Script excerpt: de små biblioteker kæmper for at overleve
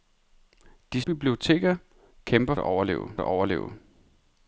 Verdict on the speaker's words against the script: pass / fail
fail